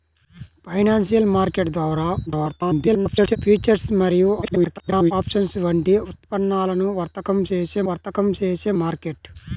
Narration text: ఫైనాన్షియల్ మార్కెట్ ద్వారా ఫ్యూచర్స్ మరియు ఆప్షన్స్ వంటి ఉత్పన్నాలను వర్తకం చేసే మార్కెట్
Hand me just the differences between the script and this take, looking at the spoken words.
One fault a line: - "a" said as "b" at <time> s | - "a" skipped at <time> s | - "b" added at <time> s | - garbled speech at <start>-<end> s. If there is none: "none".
- garbled speech at 2.3-3.4 s
- garbled speech at 4.4-5.1 s
- "వర్తకం చేసే" added at 7.9 s